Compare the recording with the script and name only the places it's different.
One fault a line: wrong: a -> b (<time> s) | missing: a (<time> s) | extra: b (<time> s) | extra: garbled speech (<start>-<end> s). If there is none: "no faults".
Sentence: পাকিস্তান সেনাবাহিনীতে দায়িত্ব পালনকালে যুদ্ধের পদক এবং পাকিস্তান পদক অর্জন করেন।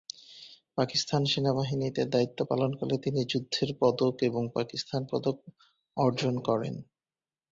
extra: তিনি (3.0 s)